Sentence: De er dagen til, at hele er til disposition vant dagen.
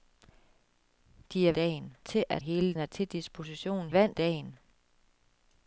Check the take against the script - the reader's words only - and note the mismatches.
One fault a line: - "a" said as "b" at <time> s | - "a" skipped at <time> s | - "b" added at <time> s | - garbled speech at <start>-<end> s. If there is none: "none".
none